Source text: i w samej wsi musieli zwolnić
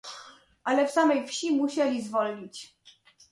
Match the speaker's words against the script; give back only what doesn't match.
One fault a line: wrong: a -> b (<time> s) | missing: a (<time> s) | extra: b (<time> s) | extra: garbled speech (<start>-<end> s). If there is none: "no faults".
wrong: i -> ale (0.6 s)